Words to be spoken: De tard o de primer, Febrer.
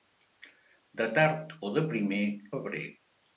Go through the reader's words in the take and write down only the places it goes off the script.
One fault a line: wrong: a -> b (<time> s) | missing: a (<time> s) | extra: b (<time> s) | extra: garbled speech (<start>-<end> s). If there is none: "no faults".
no faults